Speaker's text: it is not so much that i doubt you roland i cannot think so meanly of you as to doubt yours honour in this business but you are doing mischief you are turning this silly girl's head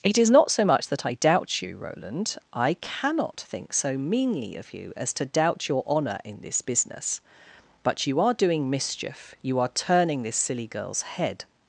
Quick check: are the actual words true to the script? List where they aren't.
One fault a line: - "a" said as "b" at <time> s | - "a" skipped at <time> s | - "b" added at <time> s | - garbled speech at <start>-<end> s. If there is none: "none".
- "yours" said as "your" at 5.7 s